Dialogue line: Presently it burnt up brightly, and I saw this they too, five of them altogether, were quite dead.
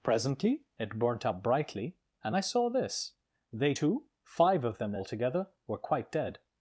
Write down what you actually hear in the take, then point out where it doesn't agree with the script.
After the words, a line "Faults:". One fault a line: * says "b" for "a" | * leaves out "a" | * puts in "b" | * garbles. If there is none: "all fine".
Presently it burnt up brightly, and I saw this they too, five of them altogether, were quite dead.
Faults:
all fine